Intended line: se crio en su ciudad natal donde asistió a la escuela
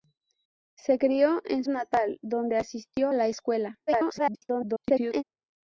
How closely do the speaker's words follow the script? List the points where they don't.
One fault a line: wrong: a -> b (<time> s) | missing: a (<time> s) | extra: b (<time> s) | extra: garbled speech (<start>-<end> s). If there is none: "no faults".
missing: su ciudad (1.6 s)
missing: a (3.1 s)
extra: garbled speech (3.9-5.2 s)